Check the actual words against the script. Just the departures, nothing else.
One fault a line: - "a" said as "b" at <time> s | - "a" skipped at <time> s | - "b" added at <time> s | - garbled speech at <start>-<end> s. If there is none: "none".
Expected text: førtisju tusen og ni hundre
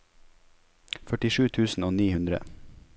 none